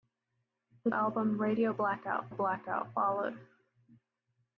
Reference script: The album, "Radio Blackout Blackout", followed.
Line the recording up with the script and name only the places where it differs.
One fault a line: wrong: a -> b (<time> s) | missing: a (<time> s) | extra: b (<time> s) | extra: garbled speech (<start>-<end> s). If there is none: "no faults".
no faults